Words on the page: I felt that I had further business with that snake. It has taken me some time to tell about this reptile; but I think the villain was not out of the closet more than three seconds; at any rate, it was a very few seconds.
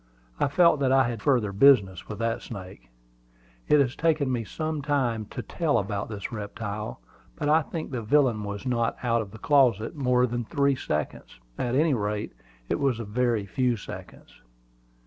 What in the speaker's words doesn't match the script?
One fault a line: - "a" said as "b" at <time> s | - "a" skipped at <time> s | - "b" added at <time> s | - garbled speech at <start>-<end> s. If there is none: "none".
none